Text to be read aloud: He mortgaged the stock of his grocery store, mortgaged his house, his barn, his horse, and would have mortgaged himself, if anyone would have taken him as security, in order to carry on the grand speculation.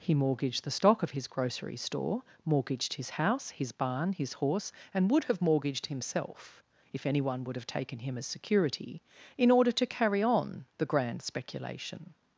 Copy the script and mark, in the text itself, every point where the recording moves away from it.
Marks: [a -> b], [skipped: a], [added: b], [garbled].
He mortgaged the stock of his grocery store, mortgaged his house, his barn, his horse, and would have mortgaged himself, if anyone would have taken him as security, in order to carry on the grand speculation.